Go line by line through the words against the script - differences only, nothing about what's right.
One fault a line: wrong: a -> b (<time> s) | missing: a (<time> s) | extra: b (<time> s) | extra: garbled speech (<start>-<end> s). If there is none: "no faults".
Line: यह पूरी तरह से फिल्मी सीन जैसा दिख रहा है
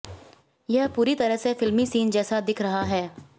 no faults